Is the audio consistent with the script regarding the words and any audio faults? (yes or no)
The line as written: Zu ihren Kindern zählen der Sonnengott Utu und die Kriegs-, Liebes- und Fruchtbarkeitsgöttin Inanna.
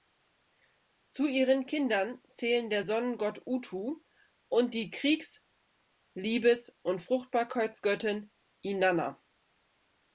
yes